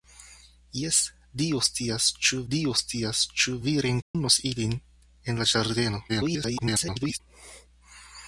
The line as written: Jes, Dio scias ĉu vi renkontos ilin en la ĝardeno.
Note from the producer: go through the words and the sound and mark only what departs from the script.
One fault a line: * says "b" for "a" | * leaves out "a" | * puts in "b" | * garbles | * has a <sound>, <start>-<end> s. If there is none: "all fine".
* puts in "Dio scias ĉu"
* has a dropout, 4.0-4.1 s
* garbles